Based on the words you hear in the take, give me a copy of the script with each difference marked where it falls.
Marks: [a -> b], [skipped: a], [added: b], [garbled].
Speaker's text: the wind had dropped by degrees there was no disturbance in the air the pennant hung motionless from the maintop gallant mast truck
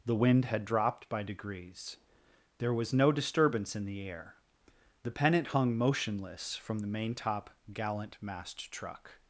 the wind had dropped by degrees there was no disturbance in the air the pennant hung motionless from the maintop gallant mast truck